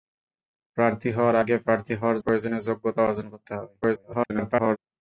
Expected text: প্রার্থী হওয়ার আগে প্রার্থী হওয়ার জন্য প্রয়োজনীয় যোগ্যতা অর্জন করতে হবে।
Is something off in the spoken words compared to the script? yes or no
yes